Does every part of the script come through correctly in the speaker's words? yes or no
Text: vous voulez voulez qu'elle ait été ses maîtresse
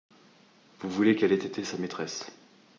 no